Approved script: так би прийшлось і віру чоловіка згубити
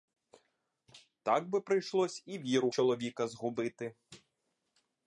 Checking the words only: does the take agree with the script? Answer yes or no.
yes